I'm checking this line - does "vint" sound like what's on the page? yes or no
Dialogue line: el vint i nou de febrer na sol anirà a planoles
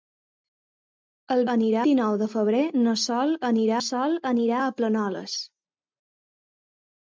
no